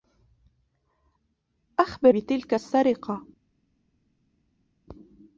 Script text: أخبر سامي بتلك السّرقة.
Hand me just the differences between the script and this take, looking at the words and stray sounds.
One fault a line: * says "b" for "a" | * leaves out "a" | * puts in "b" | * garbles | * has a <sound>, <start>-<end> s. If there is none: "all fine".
* leaves out "سامي"